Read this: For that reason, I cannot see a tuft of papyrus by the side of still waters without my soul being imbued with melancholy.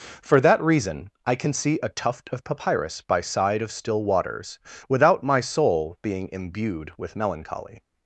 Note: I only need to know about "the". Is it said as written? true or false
false